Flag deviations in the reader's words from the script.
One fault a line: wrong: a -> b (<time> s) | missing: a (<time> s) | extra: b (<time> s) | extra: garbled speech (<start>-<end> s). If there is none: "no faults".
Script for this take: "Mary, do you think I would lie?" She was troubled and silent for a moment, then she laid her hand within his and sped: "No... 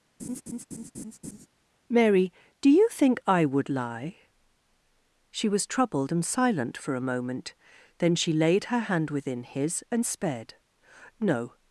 no faults